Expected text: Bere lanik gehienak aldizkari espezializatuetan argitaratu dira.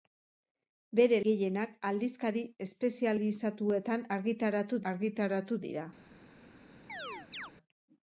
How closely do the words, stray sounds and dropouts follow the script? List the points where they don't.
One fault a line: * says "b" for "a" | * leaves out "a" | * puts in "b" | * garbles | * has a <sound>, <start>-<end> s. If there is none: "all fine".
* leaves out "lanik"
* puts in "argitaratu"
* has a chirp, 6.9-7.5 s